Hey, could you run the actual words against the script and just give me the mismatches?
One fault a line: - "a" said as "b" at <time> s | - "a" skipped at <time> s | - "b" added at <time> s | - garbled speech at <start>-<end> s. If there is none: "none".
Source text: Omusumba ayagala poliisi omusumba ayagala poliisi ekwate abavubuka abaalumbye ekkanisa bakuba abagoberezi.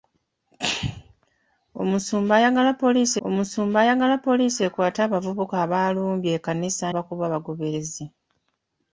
none